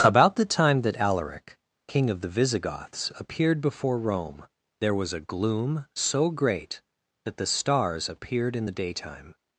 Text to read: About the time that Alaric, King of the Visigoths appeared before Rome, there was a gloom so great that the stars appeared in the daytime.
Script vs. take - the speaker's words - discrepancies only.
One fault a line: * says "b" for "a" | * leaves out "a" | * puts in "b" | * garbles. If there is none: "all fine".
all fine